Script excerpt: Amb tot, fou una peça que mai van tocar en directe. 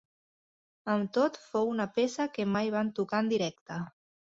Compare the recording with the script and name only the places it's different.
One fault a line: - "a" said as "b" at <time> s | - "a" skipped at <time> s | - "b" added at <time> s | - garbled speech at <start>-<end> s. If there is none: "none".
none